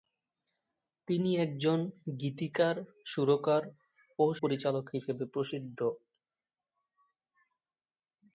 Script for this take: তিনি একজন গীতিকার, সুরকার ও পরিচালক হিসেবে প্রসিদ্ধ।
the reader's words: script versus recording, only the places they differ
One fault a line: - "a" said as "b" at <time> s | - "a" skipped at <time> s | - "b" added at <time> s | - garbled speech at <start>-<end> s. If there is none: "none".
none